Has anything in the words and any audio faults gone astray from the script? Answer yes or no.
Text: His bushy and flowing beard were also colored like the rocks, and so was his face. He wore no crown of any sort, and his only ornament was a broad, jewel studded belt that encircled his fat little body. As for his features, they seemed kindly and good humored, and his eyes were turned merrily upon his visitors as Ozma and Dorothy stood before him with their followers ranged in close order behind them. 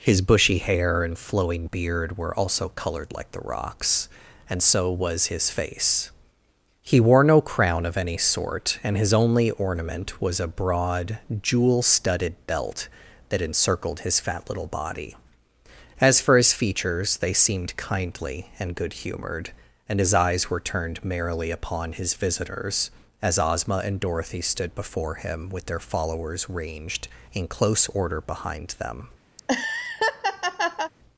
yes